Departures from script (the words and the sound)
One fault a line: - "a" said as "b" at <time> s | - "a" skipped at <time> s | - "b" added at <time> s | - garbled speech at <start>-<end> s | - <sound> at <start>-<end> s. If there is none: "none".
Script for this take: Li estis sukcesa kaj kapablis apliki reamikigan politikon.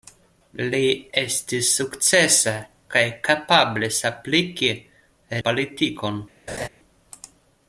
- "reamikigan" skipped at 4.7 s
- laugh at 6.5-6.7 s